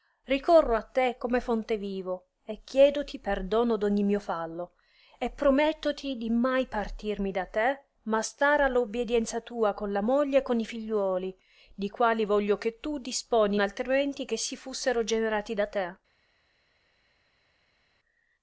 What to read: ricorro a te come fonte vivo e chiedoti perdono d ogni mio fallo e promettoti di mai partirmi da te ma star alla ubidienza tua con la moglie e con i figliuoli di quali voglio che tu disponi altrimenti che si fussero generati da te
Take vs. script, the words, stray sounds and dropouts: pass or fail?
pass